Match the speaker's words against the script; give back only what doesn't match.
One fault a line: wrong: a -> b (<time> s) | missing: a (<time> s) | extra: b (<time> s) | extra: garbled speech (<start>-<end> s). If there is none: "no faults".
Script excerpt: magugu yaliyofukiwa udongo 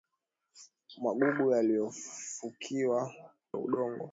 no faults